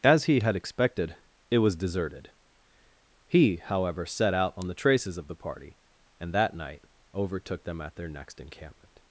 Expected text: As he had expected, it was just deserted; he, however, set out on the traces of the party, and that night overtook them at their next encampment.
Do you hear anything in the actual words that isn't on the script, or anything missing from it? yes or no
yes